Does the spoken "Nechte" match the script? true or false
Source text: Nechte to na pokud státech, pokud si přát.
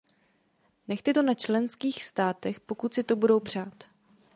true